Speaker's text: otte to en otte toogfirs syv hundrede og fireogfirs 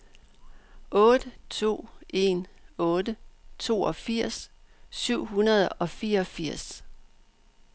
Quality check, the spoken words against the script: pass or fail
pass